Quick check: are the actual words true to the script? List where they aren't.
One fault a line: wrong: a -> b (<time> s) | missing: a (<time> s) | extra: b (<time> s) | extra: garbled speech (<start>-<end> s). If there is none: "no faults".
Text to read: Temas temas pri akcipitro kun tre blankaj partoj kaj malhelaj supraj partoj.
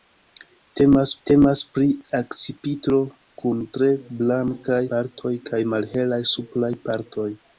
no faults